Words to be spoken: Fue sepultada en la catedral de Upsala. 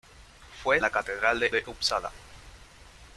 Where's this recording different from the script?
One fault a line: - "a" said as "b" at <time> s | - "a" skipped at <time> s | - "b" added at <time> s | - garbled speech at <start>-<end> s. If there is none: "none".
- "sepultada en" skipped at 0.8 s
- "de" added at 1.5 s